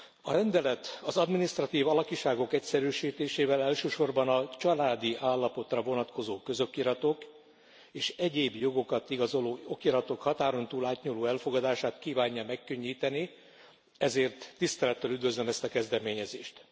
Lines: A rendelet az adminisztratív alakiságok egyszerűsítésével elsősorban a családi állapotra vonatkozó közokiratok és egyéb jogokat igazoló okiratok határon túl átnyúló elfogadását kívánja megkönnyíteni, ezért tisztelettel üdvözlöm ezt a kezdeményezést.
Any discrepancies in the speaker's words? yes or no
no